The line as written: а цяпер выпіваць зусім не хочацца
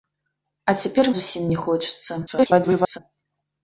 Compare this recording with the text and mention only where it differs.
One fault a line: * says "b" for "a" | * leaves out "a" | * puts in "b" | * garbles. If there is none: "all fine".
* leaves out "выпіваць"
* garbles